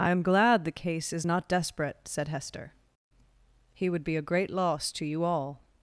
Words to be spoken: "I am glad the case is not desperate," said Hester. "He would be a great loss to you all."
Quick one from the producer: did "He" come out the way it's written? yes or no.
yes